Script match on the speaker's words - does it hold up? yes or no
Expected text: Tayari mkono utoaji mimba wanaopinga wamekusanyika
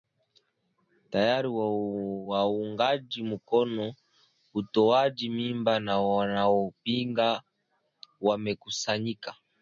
no